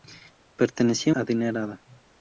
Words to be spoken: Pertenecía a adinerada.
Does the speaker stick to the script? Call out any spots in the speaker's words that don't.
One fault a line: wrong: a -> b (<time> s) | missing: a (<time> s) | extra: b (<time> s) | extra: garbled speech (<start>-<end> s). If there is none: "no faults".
no faults